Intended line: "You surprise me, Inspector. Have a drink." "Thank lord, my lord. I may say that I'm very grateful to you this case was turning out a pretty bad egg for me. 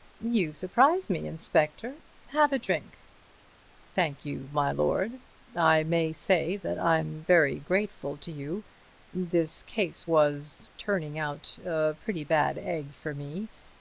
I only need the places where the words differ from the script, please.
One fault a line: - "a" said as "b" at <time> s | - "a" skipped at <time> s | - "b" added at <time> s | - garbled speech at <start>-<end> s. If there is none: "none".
- "lord" said as "you" at 4.2 s